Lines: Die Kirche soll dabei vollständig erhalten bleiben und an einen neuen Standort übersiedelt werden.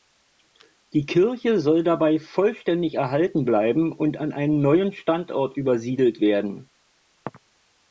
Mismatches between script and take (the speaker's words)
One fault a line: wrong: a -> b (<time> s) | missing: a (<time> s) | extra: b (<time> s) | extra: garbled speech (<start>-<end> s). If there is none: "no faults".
no faults